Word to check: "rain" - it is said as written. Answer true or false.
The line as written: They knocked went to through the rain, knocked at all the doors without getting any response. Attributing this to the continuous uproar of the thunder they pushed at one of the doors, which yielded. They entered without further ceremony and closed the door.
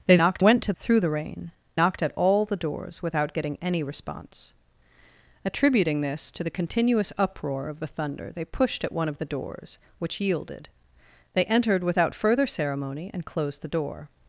true